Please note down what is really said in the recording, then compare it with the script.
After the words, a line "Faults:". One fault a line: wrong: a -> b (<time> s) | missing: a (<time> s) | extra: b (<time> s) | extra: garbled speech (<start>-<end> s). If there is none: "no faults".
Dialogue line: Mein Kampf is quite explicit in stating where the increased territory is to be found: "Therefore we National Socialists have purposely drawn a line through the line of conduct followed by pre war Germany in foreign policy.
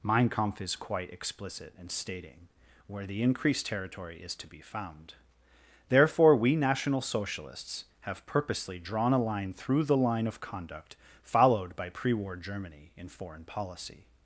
Mein Kampf is quite explicit in stating where the increased territory is to be found: "Therefore we National Socialists have purposely drawn a line through the line of conduct followed by pre war Germany in foreign policy.
Faults:
no faults